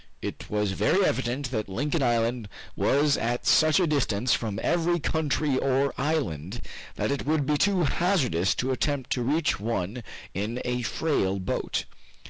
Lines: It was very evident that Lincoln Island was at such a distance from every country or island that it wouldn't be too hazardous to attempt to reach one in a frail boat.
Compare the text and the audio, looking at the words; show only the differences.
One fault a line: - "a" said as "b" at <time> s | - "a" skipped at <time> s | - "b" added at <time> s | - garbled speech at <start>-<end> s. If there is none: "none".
- "wouldn't" said as "would" at 7.2 s